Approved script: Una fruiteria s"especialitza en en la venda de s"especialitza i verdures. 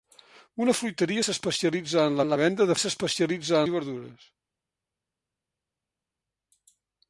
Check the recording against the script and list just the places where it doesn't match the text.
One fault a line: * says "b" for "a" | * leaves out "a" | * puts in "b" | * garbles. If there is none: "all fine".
all fine